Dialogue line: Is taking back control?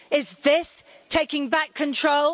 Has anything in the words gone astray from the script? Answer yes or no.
yes